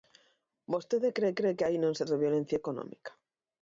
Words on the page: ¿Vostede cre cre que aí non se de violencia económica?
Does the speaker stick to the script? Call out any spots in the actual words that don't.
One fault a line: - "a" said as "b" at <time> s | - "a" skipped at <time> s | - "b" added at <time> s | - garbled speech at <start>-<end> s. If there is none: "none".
none